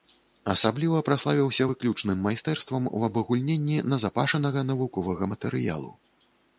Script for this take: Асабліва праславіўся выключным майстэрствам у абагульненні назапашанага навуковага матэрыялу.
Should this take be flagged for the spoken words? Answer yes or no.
no